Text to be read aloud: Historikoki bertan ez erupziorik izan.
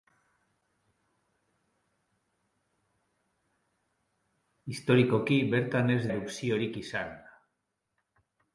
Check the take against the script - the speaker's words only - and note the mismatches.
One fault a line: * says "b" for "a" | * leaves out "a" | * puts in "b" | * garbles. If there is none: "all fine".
all fine